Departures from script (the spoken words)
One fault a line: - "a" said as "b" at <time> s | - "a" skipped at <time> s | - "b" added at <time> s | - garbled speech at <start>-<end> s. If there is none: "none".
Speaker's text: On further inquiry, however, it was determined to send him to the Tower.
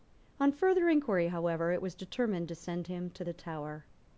none